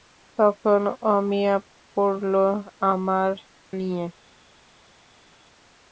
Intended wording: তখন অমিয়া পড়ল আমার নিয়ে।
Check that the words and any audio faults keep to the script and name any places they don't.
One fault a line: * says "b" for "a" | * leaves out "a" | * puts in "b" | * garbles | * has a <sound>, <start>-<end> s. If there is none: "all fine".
all fine